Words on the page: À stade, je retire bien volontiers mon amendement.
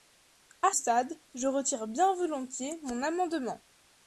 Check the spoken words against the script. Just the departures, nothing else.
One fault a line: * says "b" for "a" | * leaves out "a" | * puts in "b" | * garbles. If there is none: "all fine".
all fine